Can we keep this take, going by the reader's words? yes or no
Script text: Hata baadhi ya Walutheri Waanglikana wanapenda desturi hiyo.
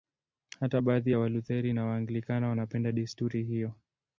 no